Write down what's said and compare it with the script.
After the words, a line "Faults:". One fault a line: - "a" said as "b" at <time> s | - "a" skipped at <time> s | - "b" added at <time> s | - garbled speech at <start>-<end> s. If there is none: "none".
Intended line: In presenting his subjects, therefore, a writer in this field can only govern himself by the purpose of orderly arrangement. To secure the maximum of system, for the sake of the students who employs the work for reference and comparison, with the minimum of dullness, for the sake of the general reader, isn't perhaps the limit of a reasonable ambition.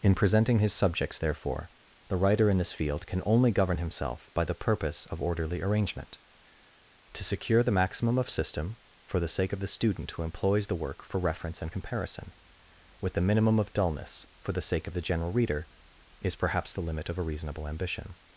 In presenting his subjects, therefore, the writer in this field can only govern himself by the purpose of orderly arrangement. To secure the maximum of system, for the sake of the student who employs the work for reference and comparison, with the minimum of dullness, for the sake of the general reader, is perhaps the limit of a reasonable ambition.
Faults:
- "a" said as "the" at 2.1 s
- "students" said as "student" at 9.7 s
- "isn't" said as "is" at 16.2 s